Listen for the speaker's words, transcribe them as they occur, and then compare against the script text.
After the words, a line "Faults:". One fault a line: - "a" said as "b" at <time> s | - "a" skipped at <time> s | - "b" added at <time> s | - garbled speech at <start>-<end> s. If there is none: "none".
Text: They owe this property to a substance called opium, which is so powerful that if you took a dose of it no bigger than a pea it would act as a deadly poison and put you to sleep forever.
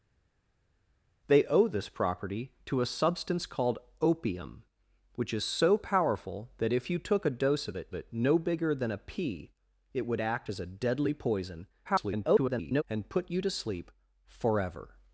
They owe this property to a substance called opium, which is so powerful that if you took a dose of it it no bigger than a pea it would act as a deadly poison [garbled] and put you to sleep forever.
Faults:
- "it" added at 7.9 s
- garbled speech at 11.8-12.8 s